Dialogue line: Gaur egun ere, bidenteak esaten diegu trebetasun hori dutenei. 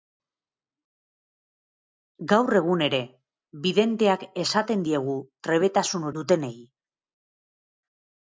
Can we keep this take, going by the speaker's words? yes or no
no